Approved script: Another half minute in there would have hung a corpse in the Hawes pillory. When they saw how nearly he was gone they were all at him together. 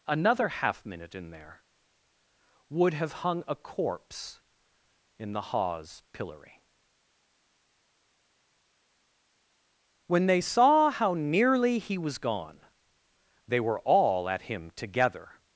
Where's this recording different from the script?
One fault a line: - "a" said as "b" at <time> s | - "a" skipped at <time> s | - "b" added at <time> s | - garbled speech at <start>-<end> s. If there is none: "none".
none